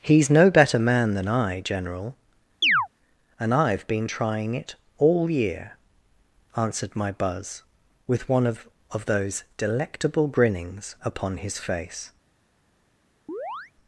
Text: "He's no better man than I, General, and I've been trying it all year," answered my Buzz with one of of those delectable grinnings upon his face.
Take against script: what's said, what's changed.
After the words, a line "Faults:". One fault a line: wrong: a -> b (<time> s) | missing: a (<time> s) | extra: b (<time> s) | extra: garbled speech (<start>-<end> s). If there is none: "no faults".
"He's no better man than I, General, and I've been trying it all year," answered my Buzz with one of of those delectable grinnings upon his face.
Faults:
no faults